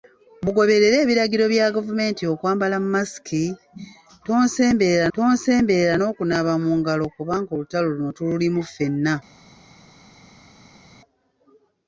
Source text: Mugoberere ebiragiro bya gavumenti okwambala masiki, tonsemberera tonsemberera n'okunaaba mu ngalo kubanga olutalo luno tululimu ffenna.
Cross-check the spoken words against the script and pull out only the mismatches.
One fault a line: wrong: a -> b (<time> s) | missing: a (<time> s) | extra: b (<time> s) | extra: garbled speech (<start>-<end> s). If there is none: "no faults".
no faults